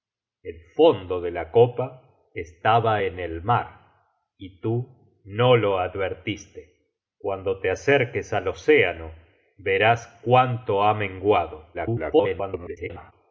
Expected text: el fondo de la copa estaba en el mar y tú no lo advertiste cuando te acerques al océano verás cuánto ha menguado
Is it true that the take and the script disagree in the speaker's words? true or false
true